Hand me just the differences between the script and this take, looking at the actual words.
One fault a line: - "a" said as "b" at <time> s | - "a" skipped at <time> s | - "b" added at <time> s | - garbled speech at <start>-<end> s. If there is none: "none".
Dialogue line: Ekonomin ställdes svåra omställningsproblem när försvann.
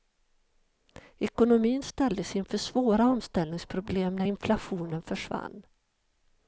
- "inför" added at 2.4 s
- "inflationen" added at 4.2 s